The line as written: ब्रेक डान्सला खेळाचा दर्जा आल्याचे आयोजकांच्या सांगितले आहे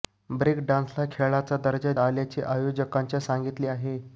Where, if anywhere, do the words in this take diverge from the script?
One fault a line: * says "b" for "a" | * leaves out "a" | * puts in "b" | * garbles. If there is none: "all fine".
all fine